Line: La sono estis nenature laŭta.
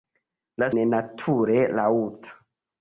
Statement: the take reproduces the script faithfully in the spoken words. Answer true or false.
false